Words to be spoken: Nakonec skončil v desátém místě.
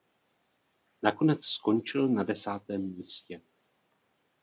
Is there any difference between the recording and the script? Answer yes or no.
yes